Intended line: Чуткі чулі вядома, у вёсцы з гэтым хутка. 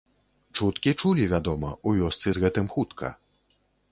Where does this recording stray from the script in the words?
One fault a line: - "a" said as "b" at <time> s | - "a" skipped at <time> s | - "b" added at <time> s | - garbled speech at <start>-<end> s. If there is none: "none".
none